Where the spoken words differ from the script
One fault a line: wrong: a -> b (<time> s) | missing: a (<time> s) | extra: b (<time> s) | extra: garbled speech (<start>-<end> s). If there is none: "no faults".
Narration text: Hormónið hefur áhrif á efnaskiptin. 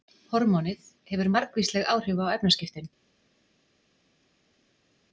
extra: margvísleg (1.4 s)